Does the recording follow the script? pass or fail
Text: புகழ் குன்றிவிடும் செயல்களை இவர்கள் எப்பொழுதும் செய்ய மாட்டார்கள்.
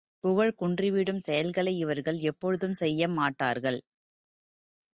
pass